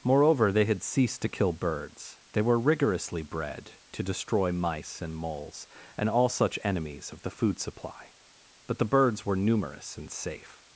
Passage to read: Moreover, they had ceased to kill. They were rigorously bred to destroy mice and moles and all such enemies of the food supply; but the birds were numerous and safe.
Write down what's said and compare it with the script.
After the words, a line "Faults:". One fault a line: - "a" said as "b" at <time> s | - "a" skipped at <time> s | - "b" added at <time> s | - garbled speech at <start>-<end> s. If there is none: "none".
Moreover, they had ceased to kill birds. They were rigorously bred to destroy mice and moles and all such enemies of the food supply; but the birds were numerous and safe.
Faults:
- "birds" added at 1.5 s